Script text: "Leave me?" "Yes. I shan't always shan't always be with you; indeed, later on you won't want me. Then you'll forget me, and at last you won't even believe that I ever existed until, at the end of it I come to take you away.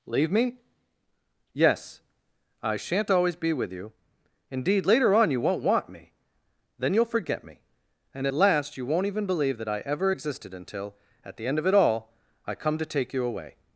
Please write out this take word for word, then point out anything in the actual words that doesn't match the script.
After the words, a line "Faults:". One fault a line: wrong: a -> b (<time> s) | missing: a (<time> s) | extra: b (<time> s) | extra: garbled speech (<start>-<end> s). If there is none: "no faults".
"Leave me?" "Yes. I shan't always be with you; indeed, later on you won't want me. Then you'll forget me, and at last you won't even believe that I ever existed until, at the end of it all, I come to take you away.
Faults:
missing: shan't always (3.4 s)
extra: all (11.7 s)